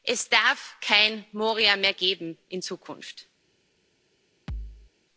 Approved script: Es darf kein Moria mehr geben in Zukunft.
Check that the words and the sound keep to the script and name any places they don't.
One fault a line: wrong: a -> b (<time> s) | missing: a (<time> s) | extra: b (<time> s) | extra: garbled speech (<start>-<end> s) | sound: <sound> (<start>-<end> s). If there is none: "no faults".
sound: thud (4.5-4.9 s)